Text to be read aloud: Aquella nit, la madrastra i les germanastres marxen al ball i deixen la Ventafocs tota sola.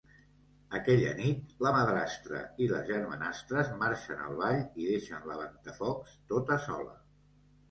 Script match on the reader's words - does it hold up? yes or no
yes